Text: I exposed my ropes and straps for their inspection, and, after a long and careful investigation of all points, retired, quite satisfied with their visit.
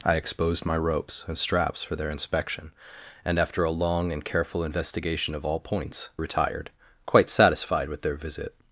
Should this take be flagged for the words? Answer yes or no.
no